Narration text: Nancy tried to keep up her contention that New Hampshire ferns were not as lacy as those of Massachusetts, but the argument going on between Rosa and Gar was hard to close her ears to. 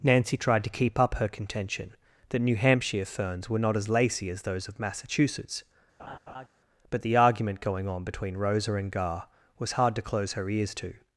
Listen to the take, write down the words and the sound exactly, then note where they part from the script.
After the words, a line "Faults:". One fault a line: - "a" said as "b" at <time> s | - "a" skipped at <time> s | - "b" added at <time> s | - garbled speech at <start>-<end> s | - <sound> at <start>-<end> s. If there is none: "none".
Nancy tried to keep up her contention that New Hampshire ferns were not as lacy as those of Massachusetts, but the argument going on between Rosa and Gar was hard to close her ears to.
Faults:
- laugh at 6.0-6.5 s